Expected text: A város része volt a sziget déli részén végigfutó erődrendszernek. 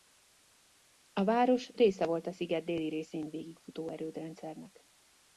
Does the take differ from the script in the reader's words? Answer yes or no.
no